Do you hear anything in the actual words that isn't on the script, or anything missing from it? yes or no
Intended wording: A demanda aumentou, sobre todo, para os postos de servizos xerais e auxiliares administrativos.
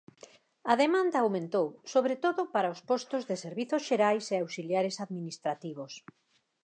no